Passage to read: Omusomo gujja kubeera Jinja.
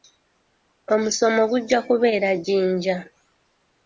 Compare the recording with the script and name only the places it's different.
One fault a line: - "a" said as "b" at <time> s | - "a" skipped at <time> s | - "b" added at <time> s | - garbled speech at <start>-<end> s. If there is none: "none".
none